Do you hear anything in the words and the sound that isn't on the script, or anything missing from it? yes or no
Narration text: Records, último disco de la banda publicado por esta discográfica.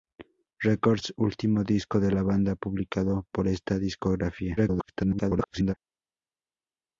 yes